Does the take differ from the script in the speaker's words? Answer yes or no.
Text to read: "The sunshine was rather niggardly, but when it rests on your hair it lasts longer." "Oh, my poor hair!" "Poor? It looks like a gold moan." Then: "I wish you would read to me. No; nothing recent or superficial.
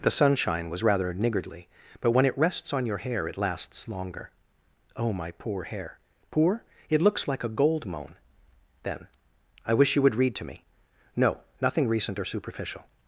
no